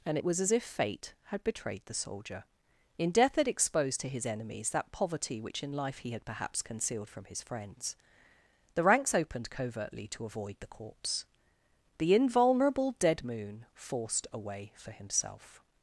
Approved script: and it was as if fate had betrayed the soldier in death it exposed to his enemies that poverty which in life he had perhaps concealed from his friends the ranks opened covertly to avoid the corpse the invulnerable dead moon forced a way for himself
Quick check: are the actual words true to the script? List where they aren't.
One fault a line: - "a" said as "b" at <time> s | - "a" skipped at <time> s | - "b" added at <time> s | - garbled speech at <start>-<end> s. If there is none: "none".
none